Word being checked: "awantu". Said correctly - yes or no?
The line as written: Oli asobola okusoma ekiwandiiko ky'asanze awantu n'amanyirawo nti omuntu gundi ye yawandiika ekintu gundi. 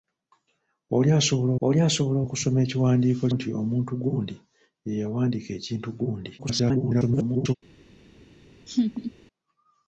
no